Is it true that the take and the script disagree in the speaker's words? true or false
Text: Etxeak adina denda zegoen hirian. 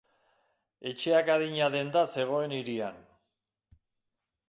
false